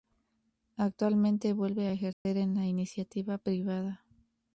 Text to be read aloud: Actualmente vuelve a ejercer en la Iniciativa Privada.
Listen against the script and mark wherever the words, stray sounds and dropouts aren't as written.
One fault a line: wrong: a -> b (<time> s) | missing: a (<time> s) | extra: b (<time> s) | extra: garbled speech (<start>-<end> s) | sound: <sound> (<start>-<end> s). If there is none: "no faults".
sound: dropout (2.1-2.3 s)